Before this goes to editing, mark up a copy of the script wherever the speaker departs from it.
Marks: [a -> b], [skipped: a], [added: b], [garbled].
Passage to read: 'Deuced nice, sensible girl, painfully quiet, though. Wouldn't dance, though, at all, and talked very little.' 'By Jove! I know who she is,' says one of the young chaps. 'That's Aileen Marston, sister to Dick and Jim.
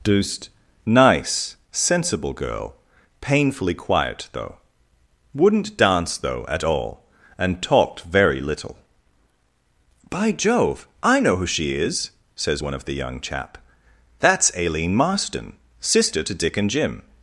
'Deuced nice, sensible girl, painfully quiet, though. Wouldn't dance, though, at all, and talked very little.' 'By Jove! I know who she is,' says one of the young [chaps. -> chap] 'That's Aileen Marston, sister to Dick and Jim.